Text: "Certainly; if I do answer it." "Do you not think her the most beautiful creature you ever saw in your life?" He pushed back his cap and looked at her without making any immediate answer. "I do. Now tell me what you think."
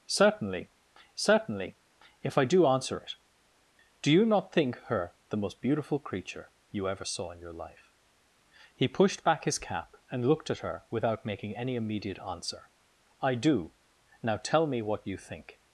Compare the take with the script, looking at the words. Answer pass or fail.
fail